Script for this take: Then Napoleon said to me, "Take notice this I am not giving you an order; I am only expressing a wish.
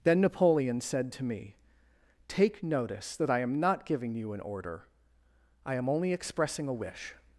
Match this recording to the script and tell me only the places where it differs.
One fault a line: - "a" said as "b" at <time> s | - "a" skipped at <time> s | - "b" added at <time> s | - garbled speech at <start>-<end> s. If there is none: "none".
- "this" said as "that" at 3.2 s